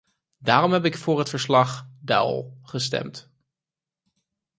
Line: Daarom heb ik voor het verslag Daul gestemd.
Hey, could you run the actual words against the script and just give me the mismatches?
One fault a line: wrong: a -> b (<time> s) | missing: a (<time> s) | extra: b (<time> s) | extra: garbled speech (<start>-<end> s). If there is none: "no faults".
no faults